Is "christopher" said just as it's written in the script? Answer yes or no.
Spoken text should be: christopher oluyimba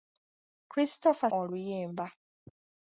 yes